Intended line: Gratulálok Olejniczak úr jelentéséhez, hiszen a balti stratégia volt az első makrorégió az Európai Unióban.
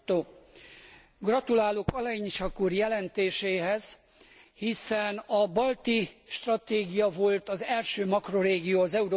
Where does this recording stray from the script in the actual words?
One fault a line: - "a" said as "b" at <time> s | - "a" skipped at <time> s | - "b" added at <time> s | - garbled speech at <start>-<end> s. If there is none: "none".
none